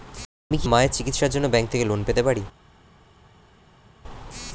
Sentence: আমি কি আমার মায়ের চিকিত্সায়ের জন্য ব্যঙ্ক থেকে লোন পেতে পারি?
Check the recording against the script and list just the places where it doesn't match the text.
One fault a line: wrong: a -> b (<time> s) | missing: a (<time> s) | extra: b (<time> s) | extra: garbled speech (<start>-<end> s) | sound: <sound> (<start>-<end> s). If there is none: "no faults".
missing: আমার (0.7 s)